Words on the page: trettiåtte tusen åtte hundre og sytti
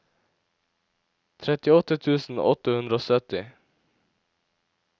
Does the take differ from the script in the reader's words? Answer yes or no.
no